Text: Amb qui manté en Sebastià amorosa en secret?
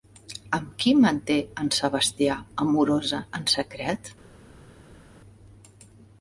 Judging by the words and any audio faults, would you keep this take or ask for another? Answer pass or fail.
pass